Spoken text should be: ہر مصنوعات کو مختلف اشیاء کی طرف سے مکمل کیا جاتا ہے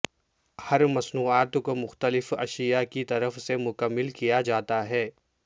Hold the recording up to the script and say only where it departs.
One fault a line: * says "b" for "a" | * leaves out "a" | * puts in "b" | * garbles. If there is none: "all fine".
all fine